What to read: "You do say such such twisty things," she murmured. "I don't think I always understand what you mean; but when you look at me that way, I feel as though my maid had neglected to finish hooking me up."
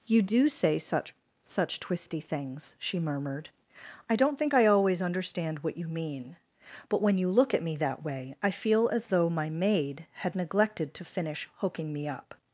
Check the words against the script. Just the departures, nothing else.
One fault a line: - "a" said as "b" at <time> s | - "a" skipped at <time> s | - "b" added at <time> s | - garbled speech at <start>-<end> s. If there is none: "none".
none